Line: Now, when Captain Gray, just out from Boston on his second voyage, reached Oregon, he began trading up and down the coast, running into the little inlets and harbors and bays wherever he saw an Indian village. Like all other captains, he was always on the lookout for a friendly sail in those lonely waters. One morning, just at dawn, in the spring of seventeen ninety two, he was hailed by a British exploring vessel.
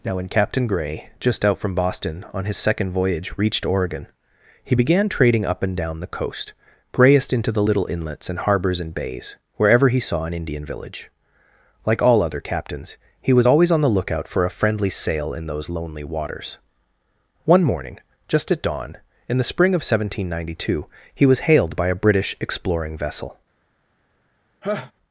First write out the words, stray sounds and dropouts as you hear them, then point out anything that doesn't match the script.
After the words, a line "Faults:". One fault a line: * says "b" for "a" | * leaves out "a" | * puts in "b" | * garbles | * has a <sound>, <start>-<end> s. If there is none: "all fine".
Now, when Captain Gray, just out from Boston on his second voyage, reached Oregon, he began trading up and down the coast, grayest into the little inlets and harbors and bays wherever he saw an Indian village. Like all other captains, he was always on the lookout for a friendly sail in those lonely waters. One morning, just at dawn, in the spring of seventeen ninety two, he was hailed by a British exploring vessel.
Faults:
* says "grayest" for "running"
* has a laugh, 24.6-24.9 s